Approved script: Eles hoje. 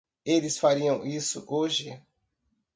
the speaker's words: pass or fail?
fail